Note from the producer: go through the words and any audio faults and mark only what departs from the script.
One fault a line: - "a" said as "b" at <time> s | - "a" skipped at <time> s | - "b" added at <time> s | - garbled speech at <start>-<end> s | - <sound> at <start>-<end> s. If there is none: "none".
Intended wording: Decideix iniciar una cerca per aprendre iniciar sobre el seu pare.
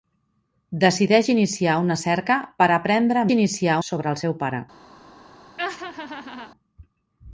- laugh at 5.6-6.5 s